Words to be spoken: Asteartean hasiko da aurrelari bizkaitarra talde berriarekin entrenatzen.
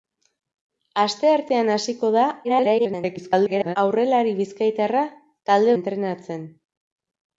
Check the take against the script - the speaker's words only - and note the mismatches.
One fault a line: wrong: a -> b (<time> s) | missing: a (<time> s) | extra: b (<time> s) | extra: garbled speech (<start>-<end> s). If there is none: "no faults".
extra: garbled speech (2.4-3.8 s)
missing: berriarekin (5.7 s)